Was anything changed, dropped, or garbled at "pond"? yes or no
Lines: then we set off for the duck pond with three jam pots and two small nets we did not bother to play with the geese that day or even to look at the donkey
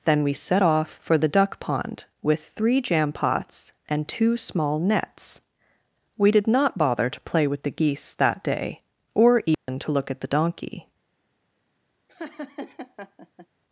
no